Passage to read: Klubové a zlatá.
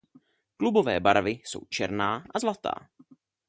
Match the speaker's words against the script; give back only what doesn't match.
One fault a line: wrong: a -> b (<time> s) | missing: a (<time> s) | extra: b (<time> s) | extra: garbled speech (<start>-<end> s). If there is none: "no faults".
extra: barvy jsou černá (1.0 s)